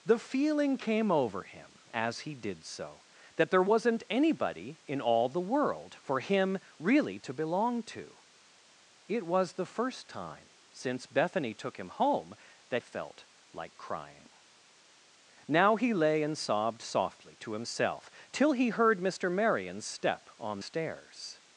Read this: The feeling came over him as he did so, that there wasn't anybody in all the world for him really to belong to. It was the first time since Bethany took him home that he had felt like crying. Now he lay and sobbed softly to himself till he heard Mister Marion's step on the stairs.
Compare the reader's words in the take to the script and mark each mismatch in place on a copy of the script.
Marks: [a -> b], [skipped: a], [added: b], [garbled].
The feeling came over him as he did so, that there wasn't anybody in all the world for him really to belong to. It was the first time since Bethany took him home that [skipped: he had] felt like crying. Now he lay and sobbed softly to himself till he heard Mister Marion's step on [skipped: the] stairs.